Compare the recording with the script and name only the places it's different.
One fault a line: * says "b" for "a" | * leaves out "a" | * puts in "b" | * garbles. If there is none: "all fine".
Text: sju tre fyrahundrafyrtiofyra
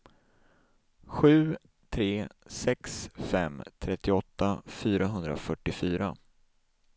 * puts in "sex fem trettioåtta"